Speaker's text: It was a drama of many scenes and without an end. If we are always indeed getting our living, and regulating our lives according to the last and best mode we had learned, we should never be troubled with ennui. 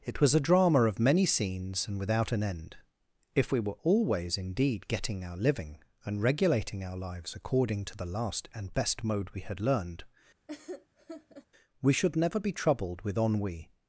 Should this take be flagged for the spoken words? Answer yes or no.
yes